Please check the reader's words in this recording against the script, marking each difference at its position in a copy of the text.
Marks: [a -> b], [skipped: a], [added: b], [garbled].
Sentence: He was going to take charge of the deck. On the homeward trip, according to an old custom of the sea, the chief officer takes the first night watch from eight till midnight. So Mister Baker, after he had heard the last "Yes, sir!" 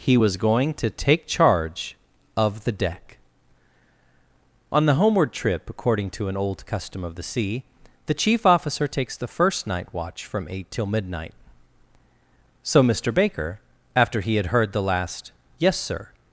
He was going to take charge of the deck. On the homeward trip, according to an old custom of the sea, the chief officer takes the first night watch from eight till midnight. So Mister Baker, after he had heard the last "Yes, sir!"